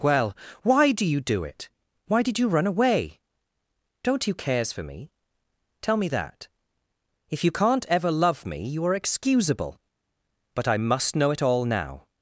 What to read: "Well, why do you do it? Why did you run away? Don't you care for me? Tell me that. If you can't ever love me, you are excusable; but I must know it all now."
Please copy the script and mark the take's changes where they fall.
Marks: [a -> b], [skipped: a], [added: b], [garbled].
"Well, why do you do it? Why did you run away? Don't you [care -> cares] for me? Tell me that. If you can't ever love me, you are excusable; but I must know it all now."